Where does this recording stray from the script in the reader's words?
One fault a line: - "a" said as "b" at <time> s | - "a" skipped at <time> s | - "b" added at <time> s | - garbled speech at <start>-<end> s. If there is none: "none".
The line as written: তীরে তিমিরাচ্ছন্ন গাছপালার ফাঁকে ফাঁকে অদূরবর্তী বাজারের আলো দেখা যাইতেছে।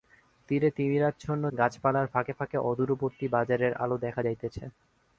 none